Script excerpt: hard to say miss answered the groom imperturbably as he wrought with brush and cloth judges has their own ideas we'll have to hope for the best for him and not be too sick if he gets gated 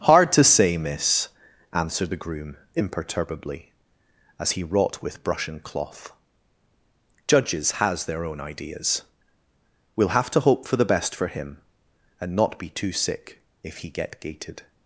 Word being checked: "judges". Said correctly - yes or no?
yes